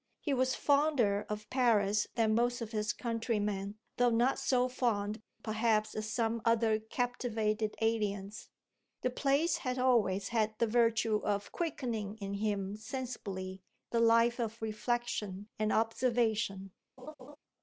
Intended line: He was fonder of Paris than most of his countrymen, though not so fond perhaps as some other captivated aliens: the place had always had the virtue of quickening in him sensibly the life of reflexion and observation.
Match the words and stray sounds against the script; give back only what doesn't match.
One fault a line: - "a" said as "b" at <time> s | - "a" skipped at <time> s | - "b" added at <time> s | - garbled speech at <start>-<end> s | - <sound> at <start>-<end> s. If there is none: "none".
- laugh at 17.0-17.4 s